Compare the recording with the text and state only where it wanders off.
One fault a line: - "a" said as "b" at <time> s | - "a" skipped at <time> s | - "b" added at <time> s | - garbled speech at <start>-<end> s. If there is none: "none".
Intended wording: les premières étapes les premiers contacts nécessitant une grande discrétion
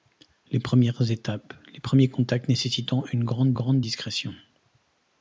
- "grande" added at 3.5 s